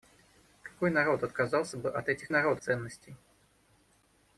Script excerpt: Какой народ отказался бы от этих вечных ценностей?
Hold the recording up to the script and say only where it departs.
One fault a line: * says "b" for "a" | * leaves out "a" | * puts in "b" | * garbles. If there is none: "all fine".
* says "народ" for "вечных"